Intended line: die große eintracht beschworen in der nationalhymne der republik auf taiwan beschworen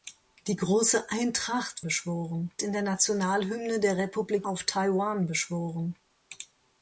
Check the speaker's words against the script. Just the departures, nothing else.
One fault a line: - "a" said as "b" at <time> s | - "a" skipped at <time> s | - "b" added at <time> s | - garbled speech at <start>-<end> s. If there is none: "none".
none